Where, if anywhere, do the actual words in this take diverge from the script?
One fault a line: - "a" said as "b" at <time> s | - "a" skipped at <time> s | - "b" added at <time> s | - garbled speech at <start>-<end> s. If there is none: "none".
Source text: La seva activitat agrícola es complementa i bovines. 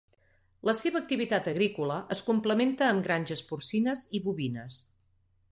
- "amb granges porcines" added at 2.9 s